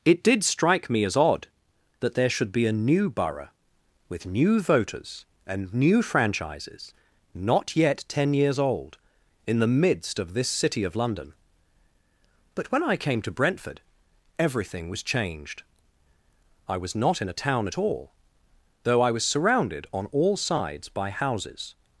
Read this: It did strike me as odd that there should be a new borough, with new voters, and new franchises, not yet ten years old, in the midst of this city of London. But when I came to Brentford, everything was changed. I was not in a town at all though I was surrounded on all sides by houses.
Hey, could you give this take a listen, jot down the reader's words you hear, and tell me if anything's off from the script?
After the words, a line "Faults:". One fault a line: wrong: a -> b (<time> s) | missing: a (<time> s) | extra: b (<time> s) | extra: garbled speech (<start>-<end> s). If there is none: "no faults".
It did strike me as odd that there should be a new borough, with new voters, and new franchises, not yet ten years old, in the midst of this city of London. But when I came to Brentford, everything was changed. I was not in a town at all though I was surrounded on all sides by houses.
Faults:
no faults